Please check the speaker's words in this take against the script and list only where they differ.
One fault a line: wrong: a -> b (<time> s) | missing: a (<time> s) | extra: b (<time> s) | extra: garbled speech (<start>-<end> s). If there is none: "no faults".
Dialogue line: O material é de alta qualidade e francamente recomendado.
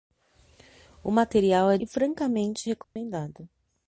missing: de alta qualidade (1.8 s)